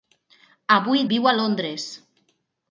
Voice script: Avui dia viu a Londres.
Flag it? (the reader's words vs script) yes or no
yes